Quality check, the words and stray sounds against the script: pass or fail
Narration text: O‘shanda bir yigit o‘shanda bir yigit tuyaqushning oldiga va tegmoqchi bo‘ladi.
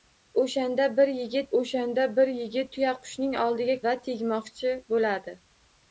pass